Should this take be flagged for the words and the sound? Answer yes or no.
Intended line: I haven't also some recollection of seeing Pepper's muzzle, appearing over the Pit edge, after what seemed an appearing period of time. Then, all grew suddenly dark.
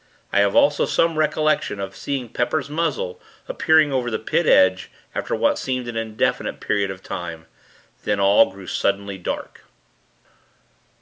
yes